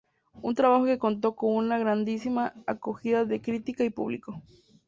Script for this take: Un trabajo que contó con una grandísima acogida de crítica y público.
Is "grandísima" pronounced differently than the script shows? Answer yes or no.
no